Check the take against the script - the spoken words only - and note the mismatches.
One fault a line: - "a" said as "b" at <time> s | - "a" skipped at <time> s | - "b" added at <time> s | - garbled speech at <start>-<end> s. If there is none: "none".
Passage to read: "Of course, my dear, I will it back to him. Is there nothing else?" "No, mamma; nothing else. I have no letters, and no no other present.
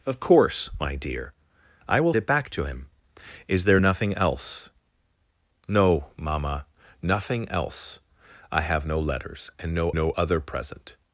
none